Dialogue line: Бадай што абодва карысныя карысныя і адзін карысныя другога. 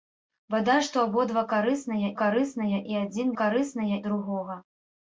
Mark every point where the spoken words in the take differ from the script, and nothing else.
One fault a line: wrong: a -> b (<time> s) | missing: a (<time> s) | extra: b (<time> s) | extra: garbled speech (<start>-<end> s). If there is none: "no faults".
no faults